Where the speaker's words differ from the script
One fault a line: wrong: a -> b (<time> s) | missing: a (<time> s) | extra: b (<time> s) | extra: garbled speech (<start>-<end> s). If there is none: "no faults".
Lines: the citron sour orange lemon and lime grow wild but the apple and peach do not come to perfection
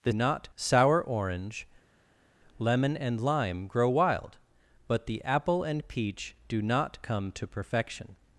wrong: citron -> not (0.1 s)